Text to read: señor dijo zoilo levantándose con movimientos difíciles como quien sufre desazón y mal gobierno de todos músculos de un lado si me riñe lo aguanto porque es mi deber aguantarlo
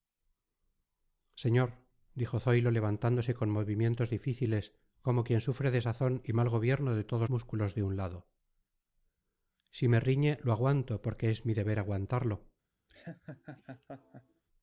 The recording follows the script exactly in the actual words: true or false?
true